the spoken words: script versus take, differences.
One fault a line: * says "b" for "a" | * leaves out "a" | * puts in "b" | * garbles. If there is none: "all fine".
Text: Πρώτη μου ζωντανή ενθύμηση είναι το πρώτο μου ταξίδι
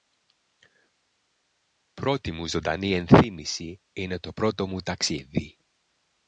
all fine